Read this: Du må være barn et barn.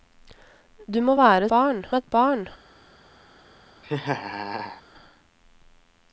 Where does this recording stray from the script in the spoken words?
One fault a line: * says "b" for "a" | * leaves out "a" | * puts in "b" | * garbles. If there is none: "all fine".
all fine